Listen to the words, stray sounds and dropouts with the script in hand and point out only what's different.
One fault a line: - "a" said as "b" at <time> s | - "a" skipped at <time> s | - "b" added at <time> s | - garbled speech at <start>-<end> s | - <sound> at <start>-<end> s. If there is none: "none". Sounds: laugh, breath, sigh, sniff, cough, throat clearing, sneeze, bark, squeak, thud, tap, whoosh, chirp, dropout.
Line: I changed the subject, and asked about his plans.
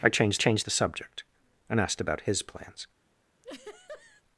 - "changed" added at 0.4 s
- laugh at 3.4-4.2 s